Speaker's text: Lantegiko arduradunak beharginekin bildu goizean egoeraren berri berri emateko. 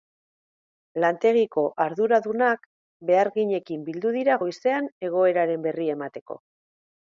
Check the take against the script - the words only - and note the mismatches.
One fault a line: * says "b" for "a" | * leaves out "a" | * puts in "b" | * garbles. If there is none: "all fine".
* puts in "dira"
* leaves out "berri"